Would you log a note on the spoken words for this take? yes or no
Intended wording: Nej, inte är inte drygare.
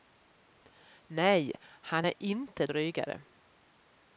yes